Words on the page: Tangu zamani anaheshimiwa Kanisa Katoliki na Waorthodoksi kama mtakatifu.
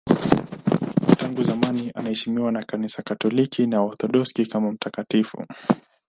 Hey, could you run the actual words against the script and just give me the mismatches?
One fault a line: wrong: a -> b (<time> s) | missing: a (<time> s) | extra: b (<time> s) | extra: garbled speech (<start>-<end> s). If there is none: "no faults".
extra: na (2.5 s)